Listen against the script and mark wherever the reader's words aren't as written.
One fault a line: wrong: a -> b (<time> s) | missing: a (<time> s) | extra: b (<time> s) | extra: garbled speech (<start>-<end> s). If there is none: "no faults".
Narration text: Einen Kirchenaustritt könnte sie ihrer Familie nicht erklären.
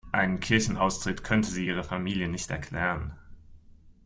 no faults